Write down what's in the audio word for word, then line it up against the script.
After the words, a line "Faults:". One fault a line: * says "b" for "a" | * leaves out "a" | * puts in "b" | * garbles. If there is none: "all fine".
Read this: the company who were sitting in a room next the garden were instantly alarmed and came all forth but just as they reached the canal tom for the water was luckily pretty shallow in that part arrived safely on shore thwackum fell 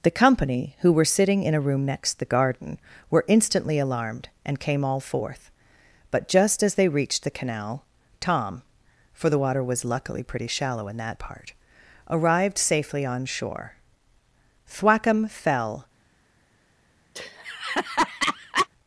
the company who were sitting in a room next the garden were instantly alarmed and came all forth but just as they reached the canal tom for the water was luckily pretty shallow in that part arrived safely on shore thwackum fell
Faults:
all fine